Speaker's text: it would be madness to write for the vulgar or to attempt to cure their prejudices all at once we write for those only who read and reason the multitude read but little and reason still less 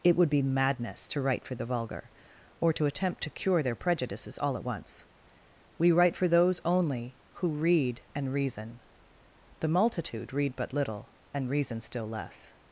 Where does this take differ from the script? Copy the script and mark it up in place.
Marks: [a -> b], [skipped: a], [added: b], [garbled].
it would be madness to write for the vulgar or to attempt to cure their prejudices all at once we write for those only who read and reason the multitude read but little and reason still less